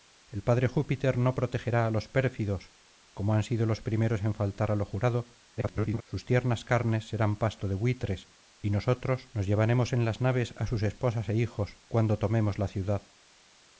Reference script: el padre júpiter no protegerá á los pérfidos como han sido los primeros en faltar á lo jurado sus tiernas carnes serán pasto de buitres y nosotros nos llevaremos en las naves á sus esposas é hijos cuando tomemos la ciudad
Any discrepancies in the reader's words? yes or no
yes